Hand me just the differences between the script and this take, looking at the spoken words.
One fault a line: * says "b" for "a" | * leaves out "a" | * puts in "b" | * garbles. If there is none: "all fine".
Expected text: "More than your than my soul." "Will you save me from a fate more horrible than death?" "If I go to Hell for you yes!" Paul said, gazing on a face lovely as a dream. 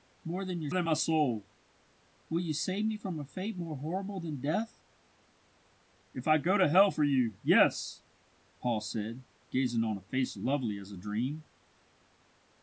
all fine